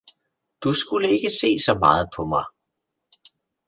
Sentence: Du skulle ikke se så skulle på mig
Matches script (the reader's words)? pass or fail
fail